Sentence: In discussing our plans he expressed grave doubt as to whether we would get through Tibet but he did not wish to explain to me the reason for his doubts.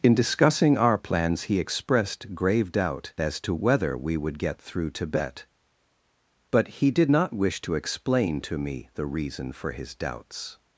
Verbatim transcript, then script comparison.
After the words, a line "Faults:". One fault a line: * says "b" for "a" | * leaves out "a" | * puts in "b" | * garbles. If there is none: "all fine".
In discussing our plans he expressed grave doubt as to whether we would get through Tibet but he did not wish to explain to me the reason for his doubts.
Faults:
all fine